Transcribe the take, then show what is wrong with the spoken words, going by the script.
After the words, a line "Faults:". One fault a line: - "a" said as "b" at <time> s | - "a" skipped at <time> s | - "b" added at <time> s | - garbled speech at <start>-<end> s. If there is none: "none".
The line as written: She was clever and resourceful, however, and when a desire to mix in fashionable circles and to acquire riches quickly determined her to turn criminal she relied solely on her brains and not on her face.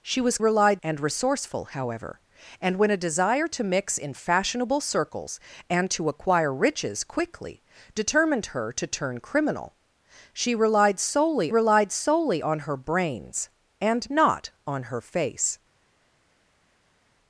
She was relied and resourceful, however, and when a desire to mix in fashionable circles and to acquire riches quickly determined her to turn criminal she relied solely relied solely on her brains and not on her face.
Faults:
- "clever" said as "relied" at 0.4 s
- "relied solely" added at 11.5 s